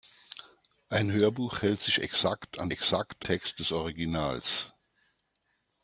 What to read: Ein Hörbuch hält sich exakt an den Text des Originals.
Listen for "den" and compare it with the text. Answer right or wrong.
wrong